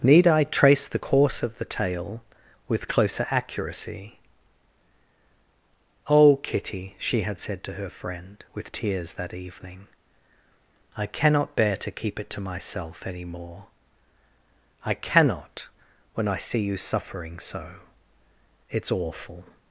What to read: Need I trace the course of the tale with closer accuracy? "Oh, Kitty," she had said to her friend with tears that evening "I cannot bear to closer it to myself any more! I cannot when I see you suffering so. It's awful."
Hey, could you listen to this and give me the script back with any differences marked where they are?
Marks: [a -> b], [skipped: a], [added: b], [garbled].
Need I trace the course of the tale with closer accuracy? "Oh, Kitty," she had said to her friend with tears that evening "I cannot bear to [closer -> keep] it to myself any more! I cannot when I see you suffering so. It's awful."